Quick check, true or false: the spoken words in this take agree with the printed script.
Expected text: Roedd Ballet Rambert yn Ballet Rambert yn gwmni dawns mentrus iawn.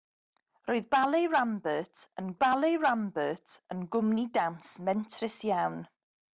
true